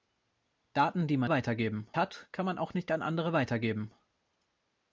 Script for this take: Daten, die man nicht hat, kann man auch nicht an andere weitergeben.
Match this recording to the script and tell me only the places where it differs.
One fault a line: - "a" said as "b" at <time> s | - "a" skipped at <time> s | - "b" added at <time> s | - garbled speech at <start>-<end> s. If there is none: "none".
- "nicht" said as "weitergeben" at 1.3 s